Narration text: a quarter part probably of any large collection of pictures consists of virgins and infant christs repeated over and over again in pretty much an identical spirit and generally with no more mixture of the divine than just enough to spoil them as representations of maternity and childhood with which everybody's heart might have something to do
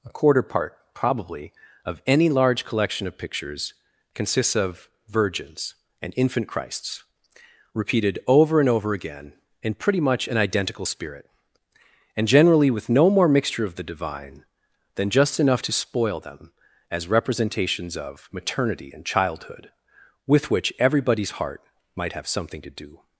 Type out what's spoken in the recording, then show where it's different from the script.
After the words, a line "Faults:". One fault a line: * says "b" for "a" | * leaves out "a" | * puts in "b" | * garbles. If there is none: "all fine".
a quarter part probably of any large collection of pictures consists of virgins and infant christs repeated over and over again in pretty much an identical spirit and generally with no more mixture of the divine than just enough to spoil them as representations of maternity and childhood with which everybody's heart might have something to do
Faults:
all fine